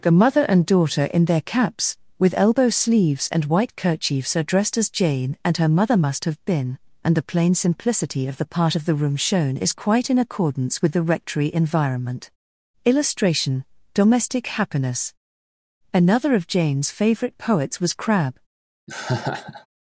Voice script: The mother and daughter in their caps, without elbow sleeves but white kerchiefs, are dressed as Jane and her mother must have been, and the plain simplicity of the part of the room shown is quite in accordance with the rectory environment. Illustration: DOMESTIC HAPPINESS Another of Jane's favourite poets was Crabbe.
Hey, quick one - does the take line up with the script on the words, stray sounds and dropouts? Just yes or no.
no